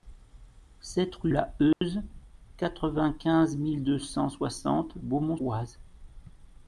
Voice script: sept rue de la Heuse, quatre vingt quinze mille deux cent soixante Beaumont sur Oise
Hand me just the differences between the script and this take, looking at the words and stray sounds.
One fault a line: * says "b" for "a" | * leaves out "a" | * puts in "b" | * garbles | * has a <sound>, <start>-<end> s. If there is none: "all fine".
* leaves out "de"
* has a dropout, 1.7-1.8 s
* leaves out "sur"